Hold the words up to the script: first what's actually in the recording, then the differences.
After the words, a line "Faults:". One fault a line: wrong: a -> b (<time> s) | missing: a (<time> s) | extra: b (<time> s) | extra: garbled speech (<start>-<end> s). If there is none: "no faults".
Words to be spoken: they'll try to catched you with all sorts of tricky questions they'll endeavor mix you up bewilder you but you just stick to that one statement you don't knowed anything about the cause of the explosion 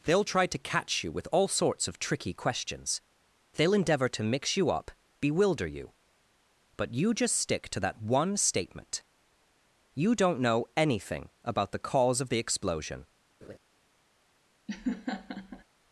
they'll try to catch you with all sorts of tricky questions they'll endeavor to mix you up bewilder you but you just stick to that one statement you don't know anything about the cause of the explosion
Faults:
wrong: catched -> catch (0.6 s)
extra: to (4.1 s)
wrong: knowed -> know (10.4 s)